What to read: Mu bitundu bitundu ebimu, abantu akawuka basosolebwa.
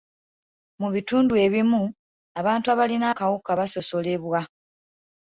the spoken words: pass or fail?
fail